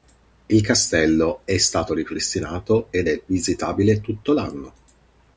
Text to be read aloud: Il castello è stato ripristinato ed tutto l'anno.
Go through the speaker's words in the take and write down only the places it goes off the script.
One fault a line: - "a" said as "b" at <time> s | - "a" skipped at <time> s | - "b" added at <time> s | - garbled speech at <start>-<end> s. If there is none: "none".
- "è visitabile" added at 3.1 s